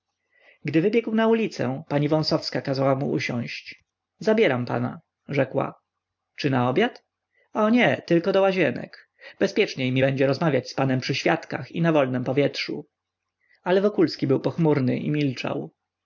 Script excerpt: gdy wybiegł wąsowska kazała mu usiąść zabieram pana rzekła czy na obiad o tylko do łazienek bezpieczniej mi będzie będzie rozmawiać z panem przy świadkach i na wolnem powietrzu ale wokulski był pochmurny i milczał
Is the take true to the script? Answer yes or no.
no